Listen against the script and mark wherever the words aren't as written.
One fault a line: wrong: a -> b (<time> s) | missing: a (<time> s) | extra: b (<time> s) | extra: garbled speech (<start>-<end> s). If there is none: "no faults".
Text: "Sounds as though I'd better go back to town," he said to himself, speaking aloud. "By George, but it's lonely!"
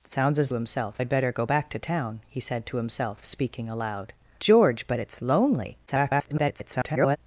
wrong: though -> himself (0.5 s)
missing: By (4.1 s)
extra: garbled speech (5.9-7.2 s)